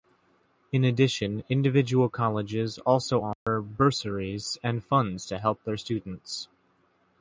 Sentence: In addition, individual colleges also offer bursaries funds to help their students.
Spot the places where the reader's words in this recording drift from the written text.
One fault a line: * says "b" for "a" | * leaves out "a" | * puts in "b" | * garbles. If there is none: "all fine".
* puts in "and"